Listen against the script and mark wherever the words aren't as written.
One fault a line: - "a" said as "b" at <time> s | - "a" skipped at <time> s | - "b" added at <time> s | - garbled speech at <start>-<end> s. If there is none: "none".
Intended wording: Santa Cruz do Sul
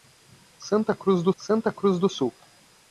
- "santa Cruz do" added at 1.4 s